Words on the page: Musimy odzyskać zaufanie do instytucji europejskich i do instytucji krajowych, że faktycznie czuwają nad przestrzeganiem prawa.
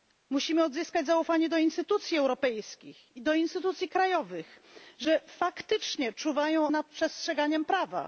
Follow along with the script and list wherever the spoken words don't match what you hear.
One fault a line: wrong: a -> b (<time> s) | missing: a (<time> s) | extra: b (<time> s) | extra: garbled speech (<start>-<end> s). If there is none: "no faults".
no faults